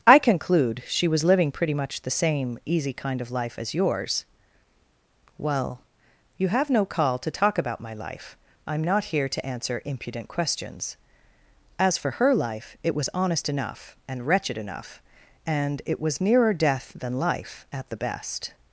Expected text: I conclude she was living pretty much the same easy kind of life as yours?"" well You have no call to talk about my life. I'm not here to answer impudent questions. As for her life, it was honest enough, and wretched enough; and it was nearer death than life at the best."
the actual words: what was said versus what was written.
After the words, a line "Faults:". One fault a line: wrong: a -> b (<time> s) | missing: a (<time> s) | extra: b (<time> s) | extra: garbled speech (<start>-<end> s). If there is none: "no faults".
I conclude she was living pretty much the same easy kind of life as yours?"" well You have no call to talk about my life. I'm not here to answer impudent questions. As for her life, it was honest enough, and wretched enough; and it was nearer death than life at the best."
Faults:
no faults